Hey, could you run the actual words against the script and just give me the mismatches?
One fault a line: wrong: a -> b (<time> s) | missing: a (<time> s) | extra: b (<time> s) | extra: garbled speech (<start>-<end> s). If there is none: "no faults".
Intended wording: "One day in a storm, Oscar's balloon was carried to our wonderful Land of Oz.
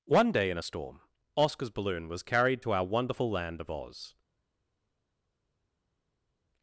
no faults